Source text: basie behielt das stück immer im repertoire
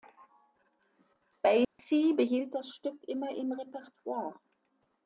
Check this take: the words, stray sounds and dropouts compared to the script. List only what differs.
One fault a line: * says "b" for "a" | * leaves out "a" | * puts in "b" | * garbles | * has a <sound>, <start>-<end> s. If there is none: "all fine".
* has a dropout, 1.6-1.8 s